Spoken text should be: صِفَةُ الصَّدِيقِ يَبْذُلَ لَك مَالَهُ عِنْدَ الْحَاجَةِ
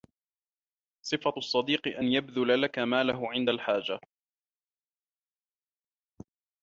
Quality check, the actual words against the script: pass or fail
fail